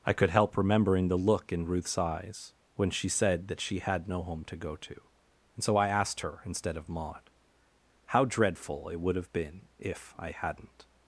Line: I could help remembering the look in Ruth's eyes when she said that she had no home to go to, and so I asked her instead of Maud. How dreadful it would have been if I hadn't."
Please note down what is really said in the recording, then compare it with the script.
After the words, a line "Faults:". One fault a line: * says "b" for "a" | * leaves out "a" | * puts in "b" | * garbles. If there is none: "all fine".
I could help remembering the look in Ruth's eyes when she said that she had no home to go to, and so I asked her instead of Maud. How dreadful it would have been if I hadn't."
Faults:
all fine